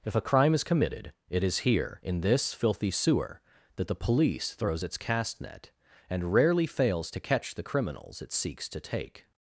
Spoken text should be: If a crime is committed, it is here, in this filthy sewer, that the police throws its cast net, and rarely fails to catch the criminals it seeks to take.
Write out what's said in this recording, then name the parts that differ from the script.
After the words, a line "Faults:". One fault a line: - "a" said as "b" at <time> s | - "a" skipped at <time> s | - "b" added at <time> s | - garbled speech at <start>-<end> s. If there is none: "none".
If a crime is committed, it is here, in this filthy sewer, that the police throws its cast net, and rarely fails to catch the criminals it seeks to take.
Faults:
none